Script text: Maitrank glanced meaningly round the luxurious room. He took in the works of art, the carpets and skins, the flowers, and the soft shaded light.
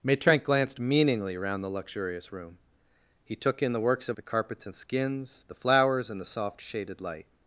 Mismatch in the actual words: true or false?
true